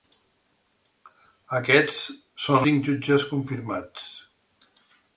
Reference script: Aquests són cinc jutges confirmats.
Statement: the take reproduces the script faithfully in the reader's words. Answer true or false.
true